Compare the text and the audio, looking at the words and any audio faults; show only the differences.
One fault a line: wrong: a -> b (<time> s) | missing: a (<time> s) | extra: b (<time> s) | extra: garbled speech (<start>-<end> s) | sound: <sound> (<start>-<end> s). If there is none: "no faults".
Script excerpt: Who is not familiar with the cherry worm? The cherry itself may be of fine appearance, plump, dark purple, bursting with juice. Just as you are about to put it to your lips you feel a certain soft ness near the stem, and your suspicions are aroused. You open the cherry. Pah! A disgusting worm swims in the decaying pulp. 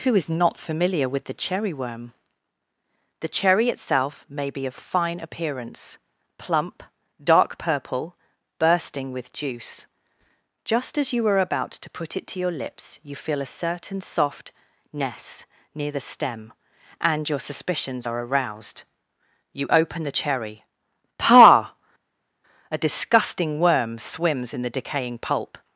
no faults